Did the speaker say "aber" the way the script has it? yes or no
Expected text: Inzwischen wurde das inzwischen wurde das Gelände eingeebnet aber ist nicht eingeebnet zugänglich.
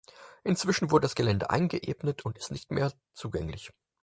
no